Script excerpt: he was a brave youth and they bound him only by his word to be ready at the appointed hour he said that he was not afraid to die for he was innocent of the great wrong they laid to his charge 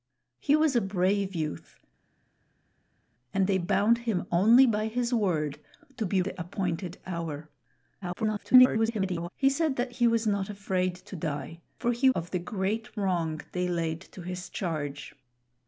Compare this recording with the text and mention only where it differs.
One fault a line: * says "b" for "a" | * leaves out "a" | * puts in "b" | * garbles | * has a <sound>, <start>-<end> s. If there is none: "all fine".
* leaves out "ready at"
* garbles
* leaves out "was innocent"